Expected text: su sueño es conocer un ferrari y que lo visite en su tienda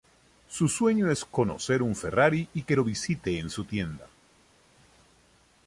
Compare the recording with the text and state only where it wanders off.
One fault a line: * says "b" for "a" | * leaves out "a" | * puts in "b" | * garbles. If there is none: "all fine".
all fine